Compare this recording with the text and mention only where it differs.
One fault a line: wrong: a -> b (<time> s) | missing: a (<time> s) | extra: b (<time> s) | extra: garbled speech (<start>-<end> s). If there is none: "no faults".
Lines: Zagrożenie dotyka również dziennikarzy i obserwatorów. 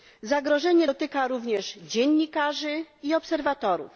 no faults